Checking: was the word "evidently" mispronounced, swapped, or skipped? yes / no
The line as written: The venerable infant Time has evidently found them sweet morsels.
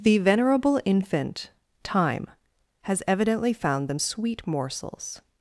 no